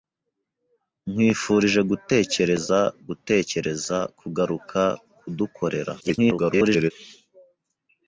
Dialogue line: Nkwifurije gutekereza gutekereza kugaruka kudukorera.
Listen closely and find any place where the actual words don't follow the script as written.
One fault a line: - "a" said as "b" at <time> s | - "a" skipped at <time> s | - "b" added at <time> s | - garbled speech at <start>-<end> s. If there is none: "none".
- garbled speech at 6.0-6.9 s